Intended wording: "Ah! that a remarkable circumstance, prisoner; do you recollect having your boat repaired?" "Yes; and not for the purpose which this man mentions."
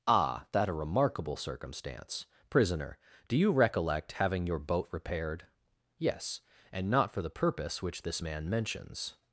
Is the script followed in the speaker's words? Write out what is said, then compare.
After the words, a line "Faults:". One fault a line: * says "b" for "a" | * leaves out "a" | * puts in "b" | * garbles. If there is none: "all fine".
"Ah! that a remarkable circumstance, prisoner; do you recollect having your boat repaired?" "Yes; and not for the purpose which this man mentions."
Faults:
all fine